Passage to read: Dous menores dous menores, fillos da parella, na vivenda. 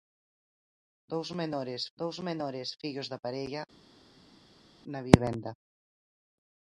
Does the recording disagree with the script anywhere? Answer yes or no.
no